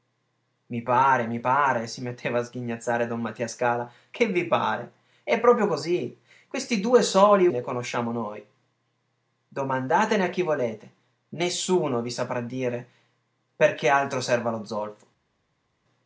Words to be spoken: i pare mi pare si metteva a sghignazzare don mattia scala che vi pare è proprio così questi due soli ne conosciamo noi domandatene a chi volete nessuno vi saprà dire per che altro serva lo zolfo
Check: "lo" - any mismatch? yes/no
no